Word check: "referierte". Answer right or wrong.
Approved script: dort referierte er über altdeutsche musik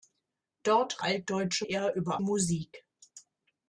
wrong